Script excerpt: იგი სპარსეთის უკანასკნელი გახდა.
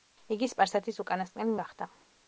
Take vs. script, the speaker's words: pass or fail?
pass